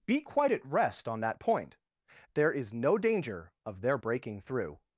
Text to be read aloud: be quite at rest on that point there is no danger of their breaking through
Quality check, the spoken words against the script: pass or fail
pass